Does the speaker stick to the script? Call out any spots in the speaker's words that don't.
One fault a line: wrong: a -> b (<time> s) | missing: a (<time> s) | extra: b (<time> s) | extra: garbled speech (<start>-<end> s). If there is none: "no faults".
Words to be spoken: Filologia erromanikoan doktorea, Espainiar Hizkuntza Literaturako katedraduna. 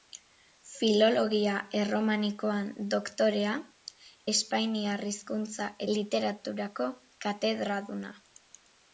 no faults